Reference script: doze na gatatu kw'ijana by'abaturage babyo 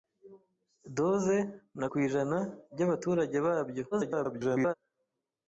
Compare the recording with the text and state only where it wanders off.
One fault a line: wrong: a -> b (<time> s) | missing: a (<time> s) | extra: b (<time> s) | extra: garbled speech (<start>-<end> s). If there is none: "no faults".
missing: gatatu (1.9 s)
extra: garbled speech (3.9-4.7 s)